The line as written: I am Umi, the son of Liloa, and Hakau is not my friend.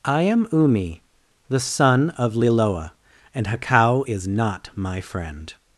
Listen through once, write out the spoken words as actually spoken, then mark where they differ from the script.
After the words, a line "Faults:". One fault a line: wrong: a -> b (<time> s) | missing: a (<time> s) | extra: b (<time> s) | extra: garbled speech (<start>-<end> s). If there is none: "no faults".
I am Umi, the son of Liloa, and Hakau is not my friend.
Faults:
no faults